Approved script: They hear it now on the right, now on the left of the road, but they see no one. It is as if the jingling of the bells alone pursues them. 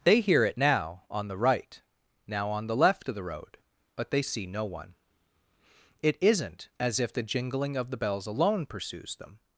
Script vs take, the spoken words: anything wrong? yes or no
yes